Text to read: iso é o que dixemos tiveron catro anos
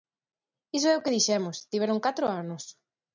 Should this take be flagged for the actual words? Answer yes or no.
no